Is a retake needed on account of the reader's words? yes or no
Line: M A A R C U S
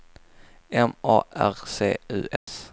yes